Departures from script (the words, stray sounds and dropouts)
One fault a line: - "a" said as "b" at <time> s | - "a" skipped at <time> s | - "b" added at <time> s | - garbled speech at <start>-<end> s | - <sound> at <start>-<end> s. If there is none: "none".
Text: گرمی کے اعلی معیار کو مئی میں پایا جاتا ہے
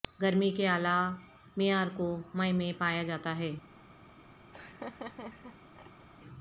- laugh at 4.5-6.1 s